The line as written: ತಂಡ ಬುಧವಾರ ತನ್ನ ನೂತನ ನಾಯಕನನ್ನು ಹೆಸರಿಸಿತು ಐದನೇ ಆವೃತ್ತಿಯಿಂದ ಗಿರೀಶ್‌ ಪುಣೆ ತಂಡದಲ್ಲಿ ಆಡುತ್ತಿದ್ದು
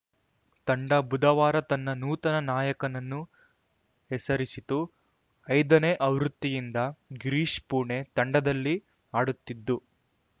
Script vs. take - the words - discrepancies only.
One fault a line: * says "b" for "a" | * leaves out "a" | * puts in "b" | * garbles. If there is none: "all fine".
all fine